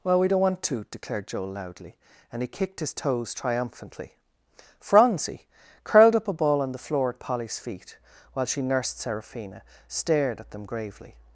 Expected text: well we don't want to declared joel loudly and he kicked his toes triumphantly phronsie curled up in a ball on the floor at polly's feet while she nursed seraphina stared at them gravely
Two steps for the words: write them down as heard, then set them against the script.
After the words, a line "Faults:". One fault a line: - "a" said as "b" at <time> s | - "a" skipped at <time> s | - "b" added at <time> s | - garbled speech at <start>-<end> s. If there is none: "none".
well we don't want to declared joel loudly and he kicked his toes triumphantly phronsie curled up a ball on the floor at polly's feet while she nursed seraphina stared at them gravely
Faults:
- "in" skipped at 6.3 s